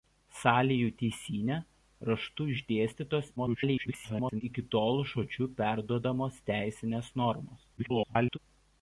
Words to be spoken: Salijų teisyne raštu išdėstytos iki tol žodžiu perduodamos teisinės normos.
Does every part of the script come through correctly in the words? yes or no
no